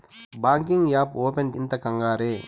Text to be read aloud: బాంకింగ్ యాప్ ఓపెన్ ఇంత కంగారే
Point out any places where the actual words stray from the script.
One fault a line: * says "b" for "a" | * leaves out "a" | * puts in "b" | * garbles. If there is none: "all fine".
all fine